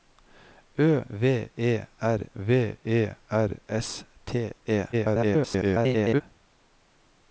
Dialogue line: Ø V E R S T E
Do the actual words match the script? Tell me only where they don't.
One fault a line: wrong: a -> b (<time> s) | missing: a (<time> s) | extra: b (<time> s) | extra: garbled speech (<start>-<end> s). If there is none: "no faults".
extra: V E R (2.3 s)
extra: garbled speech (4.9-6.2 s)